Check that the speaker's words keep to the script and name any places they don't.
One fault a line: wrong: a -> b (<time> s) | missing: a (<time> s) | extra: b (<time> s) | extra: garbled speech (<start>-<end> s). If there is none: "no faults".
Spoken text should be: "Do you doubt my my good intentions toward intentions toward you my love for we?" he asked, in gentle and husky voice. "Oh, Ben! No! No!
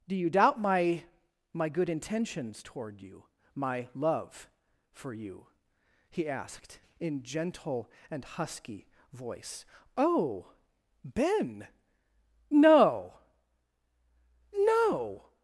missing: intentions toward (3.0 s)
wrong: we -> you (5.1 s)